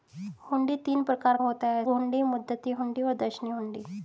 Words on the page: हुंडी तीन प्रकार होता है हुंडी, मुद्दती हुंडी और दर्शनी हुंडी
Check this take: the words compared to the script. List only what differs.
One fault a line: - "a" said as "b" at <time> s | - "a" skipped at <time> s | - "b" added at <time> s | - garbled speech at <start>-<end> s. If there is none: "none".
none